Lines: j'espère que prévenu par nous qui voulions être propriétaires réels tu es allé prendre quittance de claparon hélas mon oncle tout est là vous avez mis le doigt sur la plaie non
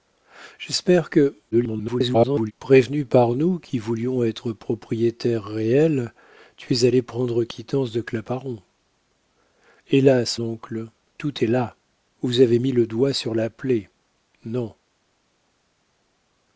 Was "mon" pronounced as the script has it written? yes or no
no